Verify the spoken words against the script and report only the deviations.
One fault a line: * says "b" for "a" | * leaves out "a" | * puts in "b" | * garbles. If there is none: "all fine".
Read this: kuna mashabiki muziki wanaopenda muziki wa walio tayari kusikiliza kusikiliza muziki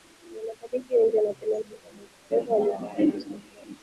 * says "wengi" for "muziki"
* puts in "bongo fleva"
* leaves out "kusikiliza"